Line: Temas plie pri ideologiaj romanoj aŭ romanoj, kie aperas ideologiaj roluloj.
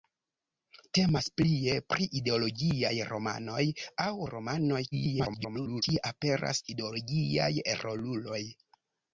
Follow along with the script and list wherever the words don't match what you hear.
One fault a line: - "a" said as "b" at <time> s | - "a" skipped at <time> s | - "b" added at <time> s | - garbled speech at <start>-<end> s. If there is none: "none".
- garbled speech at 4.9-5.8 s